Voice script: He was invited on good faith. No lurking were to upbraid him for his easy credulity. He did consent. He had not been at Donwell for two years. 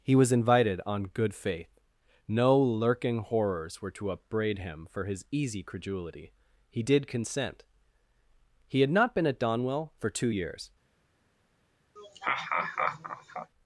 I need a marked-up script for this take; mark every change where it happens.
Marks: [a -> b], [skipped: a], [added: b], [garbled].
He was invited on good faith. No lurking [added: horrors] were to upbraid him for his easy credulity. He did consent. He had not been at Donwell for two years.